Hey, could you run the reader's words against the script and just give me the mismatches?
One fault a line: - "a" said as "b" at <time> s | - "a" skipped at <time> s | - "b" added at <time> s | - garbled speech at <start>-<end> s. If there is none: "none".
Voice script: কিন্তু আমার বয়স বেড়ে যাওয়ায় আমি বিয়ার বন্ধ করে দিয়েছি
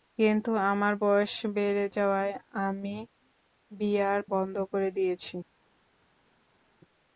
none